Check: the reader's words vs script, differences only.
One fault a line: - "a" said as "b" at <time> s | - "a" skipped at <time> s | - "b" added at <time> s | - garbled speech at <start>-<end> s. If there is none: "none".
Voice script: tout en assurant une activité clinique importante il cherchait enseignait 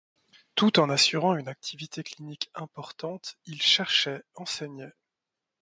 none